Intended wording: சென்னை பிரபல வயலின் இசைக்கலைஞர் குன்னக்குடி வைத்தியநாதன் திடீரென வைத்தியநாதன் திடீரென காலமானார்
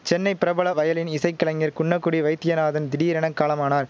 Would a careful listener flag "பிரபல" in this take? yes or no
no